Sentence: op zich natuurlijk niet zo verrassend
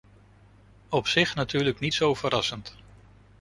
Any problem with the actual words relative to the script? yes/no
no